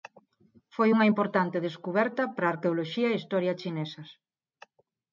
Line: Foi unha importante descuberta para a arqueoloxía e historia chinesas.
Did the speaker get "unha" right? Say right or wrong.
right